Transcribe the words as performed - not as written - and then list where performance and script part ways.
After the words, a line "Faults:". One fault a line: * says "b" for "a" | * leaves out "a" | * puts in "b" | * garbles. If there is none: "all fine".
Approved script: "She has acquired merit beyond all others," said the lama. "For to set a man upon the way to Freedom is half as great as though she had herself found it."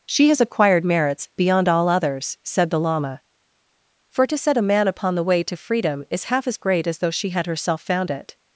"She has acquired merits beyond all others," said the lama. "For to set a man upon the way to Freedom is half as great as though she had herself found it."
Faults:
* says "merits" for "merit"